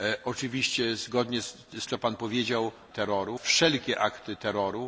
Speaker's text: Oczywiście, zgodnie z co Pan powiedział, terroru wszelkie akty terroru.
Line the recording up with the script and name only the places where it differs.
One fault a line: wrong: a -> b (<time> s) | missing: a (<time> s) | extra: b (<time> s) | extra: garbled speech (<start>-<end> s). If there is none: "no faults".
no faults